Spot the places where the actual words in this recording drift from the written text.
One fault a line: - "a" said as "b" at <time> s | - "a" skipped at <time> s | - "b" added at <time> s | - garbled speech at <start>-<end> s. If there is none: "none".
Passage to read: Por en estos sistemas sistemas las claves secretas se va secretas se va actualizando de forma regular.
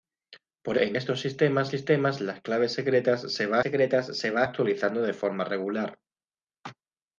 none